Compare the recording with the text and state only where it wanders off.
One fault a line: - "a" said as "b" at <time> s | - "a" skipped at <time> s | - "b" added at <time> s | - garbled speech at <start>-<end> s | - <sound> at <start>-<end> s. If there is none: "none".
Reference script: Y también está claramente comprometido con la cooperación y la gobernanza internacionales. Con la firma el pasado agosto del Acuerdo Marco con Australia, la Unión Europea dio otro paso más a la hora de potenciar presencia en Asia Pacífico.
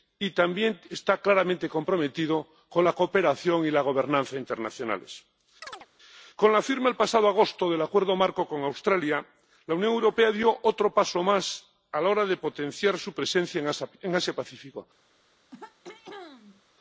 - chirp at 5.6-5.9 s
- "su" added at 13.0 s
- throat clearing at 15.5-16.6 s